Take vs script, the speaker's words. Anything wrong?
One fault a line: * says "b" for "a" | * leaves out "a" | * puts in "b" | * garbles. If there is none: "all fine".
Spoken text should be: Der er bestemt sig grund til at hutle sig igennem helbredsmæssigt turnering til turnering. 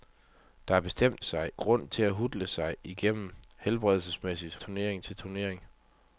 all fine